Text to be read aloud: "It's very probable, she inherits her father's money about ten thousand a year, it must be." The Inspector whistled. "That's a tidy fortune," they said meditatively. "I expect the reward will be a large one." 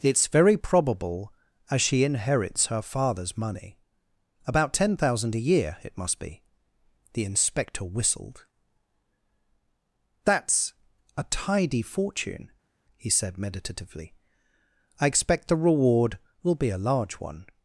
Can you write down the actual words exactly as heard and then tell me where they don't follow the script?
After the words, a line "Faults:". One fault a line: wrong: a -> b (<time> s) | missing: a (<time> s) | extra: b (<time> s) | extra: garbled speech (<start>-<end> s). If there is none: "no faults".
"It's very probable, as she inherits her father's money about ten thousand a year, it must be." The Inspector whistled. "That's a tidy fortune," he said meditatively. "I expect the reward will be a large one."
Faults:
extra: as (1.7 s)
wrong: they -> he (13.0 s)